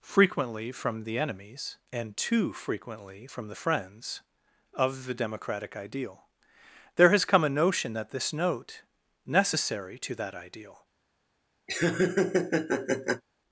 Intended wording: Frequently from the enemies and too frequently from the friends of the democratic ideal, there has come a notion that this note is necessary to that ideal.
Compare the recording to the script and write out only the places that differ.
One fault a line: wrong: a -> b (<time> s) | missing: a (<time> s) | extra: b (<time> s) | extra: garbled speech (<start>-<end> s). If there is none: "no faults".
missing: is (8.8 s)